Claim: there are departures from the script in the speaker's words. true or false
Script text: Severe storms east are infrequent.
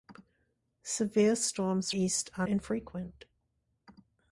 false